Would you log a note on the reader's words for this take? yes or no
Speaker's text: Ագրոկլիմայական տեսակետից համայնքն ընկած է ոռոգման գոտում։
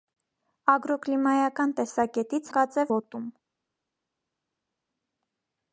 yes